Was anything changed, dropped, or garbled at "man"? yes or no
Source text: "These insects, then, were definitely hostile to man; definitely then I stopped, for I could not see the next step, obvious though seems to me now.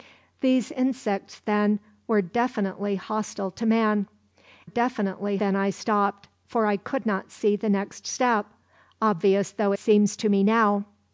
no